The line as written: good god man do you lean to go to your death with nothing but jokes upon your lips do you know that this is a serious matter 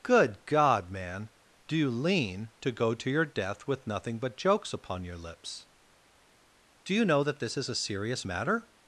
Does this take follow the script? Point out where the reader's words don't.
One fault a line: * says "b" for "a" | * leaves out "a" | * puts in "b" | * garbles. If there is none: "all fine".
all fine